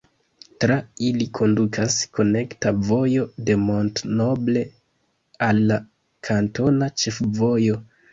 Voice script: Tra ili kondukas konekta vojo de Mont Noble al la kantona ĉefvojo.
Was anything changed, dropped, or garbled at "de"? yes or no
no